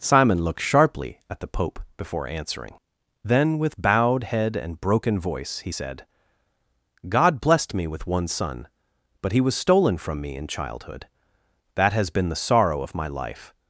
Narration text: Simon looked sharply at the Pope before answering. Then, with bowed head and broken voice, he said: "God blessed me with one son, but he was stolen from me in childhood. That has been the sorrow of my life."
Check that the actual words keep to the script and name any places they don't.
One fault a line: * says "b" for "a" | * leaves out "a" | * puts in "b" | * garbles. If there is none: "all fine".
all fine